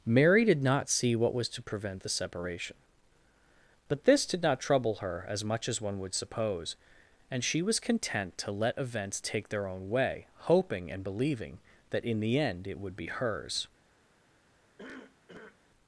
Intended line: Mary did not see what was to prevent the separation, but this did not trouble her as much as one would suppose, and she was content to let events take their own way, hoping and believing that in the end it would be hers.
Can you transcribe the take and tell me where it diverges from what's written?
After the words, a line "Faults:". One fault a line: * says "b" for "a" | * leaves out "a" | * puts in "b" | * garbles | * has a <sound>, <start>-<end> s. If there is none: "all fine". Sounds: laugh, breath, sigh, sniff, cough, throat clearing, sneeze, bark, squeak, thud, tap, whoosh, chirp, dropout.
Mary did not see what was to prevent the separation, but this did not trouble her as much as one would suppose, and she was content to let events take their own way, hoping and believing that in the end it would be hers.
Faults:
* has a cough, 14.8-15.6 s